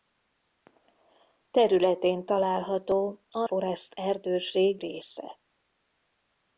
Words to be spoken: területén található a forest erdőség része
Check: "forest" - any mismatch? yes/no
no